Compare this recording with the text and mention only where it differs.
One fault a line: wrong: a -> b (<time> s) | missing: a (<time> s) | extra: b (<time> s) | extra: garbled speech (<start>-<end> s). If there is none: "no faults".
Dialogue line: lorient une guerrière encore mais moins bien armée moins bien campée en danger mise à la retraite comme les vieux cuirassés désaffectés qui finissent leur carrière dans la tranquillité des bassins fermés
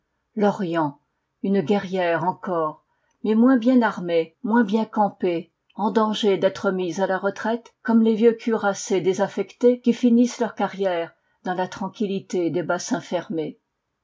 extra: d'être (6.4 s)